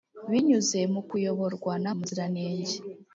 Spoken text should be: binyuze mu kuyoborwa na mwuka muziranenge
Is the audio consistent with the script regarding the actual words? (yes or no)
no